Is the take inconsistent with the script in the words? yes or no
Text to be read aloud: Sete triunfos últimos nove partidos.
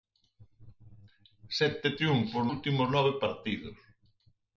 no